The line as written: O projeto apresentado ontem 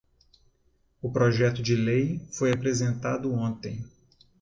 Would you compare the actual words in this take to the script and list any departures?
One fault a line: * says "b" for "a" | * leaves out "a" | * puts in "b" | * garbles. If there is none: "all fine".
* puts in "de lei foi"